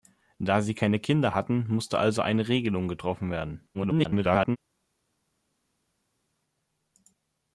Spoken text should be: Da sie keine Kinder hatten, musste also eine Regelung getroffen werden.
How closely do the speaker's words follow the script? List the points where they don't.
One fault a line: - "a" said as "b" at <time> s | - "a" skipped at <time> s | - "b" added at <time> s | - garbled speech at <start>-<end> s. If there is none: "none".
- garbled speech at 3.7-4.6 s